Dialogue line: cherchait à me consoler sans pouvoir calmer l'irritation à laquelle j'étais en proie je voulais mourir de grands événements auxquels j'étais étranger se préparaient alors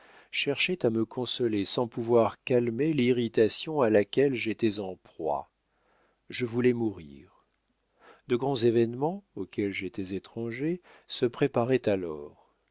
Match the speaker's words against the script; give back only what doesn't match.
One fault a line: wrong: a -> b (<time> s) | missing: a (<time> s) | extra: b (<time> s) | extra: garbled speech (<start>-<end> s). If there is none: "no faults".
no faults